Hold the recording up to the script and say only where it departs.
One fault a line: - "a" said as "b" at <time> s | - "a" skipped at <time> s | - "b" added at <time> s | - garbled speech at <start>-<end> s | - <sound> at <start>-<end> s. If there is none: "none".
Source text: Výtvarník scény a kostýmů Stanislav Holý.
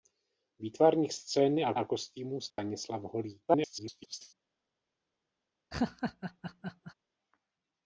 - "a" added at 1.7 s
- dropout at 2.5-2.6 s
- garbled speech at 3.5-4.3 s
- laugh at 5.7-6.9 s